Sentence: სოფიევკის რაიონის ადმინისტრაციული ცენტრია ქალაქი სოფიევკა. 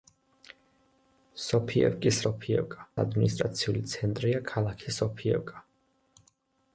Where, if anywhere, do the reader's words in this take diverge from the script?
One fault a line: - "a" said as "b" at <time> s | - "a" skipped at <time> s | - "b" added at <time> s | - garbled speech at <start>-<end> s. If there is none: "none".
- "რაიონის" said as "სოფიევკა" at 2.2 s